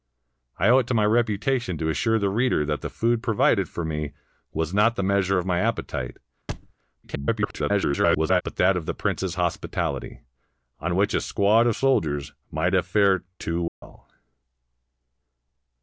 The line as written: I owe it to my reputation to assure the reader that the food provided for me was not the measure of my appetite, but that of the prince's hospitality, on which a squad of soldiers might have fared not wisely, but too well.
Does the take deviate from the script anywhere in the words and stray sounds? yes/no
yes